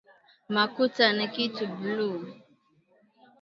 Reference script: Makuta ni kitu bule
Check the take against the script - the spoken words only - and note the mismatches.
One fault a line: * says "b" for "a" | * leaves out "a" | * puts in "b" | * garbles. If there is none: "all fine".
all fine